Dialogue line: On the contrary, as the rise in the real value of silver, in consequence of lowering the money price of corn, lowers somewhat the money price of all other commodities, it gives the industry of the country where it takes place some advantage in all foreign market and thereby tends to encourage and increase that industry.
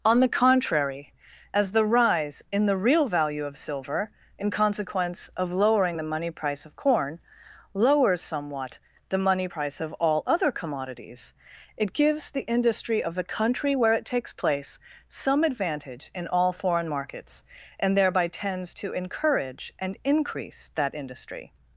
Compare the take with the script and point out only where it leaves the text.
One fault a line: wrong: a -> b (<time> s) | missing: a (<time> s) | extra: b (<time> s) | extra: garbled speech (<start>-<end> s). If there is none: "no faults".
wrong: market -> markets (16.9 s)